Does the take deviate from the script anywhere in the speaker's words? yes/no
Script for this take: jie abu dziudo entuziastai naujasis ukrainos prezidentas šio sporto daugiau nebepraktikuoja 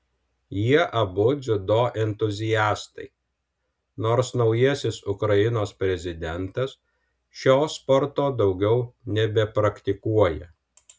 yes